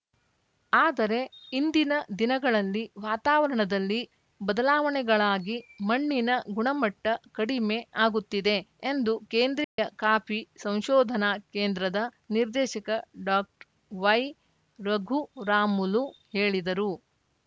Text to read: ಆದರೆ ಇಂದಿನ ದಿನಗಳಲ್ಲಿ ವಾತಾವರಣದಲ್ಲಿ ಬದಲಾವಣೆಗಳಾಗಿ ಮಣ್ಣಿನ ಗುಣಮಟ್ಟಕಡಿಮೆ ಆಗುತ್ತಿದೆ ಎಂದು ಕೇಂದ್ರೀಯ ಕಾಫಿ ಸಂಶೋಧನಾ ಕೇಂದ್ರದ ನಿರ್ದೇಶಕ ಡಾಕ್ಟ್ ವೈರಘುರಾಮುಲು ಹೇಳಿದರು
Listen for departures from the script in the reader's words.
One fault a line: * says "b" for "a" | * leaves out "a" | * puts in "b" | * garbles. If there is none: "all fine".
all fine